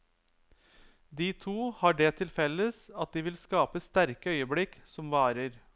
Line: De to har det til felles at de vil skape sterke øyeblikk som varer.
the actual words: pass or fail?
pass